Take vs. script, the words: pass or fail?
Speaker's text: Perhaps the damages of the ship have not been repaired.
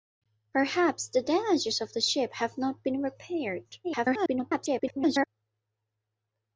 fail